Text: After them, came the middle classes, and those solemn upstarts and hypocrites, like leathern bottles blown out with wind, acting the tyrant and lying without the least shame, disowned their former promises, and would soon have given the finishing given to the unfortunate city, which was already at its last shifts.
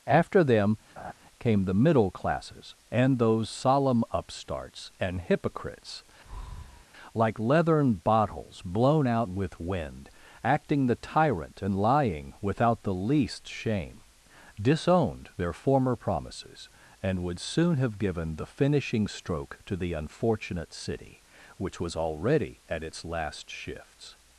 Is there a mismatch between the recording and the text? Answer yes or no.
yes